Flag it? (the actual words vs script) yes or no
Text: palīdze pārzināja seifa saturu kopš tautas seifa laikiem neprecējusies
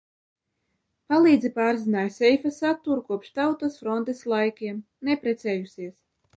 yes